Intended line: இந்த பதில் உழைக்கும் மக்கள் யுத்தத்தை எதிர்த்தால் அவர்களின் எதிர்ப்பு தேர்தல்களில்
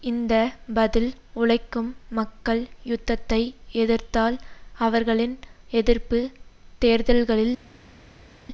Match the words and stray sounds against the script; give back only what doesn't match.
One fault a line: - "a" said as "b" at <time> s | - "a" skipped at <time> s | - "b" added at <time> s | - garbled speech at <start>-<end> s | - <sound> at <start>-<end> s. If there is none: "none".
none